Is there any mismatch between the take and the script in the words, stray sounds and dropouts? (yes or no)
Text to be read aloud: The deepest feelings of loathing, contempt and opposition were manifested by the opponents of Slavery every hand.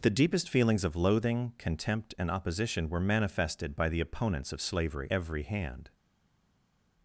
no